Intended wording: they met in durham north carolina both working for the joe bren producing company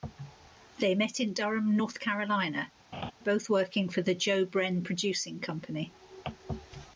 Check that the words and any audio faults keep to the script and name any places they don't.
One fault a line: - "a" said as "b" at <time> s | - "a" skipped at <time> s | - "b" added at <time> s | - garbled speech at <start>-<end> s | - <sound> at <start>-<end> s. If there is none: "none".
- laugh at 2.9-3.1 s